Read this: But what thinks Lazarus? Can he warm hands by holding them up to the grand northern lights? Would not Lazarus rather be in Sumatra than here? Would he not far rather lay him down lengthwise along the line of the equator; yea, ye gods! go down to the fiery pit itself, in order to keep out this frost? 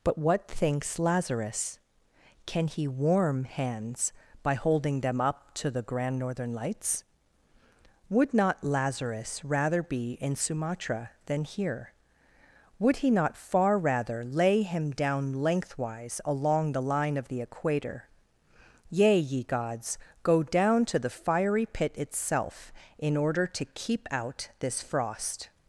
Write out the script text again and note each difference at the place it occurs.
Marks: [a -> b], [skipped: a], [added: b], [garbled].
But what thinks Lazarus? Can he warm hands by holding them up to the grand northern lights? Would not Lazarus rather be in Sumatra than here? Would he not far rather lay him down lengthwise along the line of the equator; yea, ye gods! go down to the fiery pit itself, in order to keep out this frost?